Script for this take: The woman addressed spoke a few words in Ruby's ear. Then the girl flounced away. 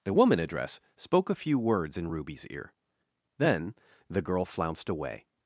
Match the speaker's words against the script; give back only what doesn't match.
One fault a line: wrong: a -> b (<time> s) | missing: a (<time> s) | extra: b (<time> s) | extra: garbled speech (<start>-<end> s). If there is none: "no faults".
wrong: addressed -> address (0.4 s)